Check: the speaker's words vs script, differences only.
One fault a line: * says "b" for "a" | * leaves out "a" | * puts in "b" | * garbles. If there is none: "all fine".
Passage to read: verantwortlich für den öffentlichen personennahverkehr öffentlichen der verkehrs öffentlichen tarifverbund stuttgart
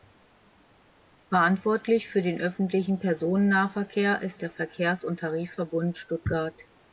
* says "ist" for "öffentlichen"
* says "und" for "öffentlichen"